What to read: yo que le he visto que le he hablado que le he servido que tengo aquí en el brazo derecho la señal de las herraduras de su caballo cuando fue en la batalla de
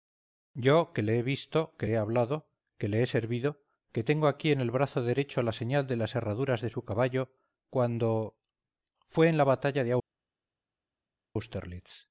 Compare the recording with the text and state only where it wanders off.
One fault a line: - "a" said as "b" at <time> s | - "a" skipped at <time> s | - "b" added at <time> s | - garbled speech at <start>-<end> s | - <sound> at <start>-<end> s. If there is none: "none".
- "le" skipped at 1.9 s